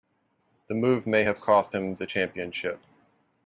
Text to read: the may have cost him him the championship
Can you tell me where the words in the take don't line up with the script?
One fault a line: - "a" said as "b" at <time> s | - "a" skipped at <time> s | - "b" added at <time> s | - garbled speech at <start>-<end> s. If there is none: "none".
- "move" added at 0.7 s
- "him" skipped at 1.9 s